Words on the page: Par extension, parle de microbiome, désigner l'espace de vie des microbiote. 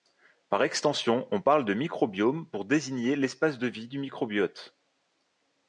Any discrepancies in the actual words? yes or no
yes